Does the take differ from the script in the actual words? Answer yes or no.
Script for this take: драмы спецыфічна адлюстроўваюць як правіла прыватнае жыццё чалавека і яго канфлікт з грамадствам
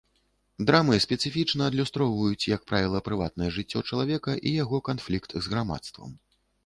no